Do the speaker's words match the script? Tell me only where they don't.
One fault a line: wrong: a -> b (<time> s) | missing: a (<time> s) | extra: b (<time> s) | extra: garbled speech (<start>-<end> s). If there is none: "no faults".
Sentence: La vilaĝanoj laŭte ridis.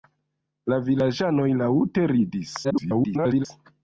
extra: garbled speech (2.6-3.5 s)